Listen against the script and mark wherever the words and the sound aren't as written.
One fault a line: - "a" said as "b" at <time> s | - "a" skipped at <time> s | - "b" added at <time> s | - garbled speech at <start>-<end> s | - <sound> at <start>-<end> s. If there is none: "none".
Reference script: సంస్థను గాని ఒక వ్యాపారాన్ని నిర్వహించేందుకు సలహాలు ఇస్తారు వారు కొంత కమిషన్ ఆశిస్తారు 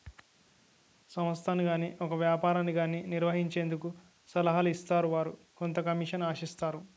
- "గాని" added at 2.7 s